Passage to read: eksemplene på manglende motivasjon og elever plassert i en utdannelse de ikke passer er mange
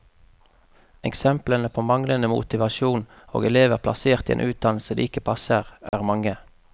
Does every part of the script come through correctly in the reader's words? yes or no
yes